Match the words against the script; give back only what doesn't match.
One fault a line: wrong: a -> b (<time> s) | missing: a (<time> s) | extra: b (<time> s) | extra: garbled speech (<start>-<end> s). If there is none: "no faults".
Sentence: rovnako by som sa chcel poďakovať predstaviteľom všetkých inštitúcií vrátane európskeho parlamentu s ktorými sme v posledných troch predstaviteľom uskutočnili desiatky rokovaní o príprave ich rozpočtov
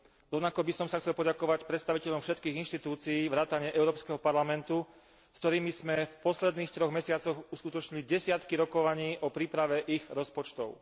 wrong: predstaviteľom -> mesiacoch (6.9 s)